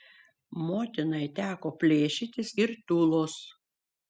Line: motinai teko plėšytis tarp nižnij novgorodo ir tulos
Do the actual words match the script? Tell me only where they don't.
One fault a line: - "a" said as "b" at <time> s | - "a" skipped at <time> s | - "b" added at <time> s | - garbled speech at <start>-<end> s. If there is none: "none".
- "tarp nižnij novgorodo" skipped at 2.5 s